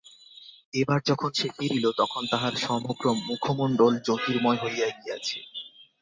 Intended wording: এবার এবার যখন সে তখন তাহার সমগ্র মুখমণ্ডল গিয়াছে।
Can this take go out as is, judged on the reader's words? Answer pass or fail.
fail